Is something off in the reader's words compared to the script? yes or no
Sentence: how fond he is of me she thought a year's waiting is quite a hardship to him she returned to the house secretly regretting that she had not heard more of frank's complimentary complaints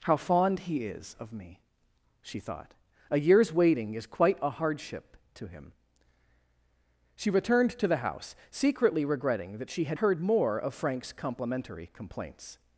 yes